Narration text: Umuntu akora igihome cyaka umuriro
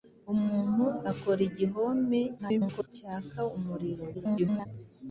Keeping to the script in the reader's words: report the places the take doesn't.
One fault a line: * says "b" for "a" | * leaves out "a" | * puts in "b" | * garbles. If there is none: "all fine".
* garbles
* garbles